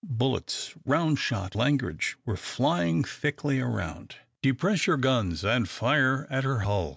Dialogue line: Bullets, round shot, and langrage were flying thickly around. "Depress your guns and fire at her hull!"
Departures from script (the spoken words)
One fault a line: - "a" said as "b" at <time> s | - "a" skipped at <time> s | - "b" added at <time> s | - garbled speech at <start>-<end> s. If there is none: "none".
- "and" skipped at 1.6 s